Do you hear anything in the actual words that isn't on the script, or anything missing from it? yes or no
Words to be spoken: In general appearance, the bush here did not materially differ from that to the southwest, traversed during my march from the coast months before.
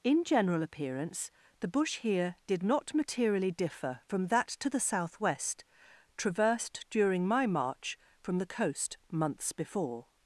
no